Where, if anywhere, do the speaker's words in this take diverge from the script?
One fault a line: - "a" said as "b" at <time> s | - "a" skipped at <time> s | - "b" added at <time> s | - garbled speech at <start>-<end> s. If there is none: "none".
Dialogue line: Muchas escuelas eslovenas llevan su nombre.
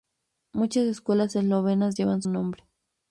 - "su" skipped at 2.2 s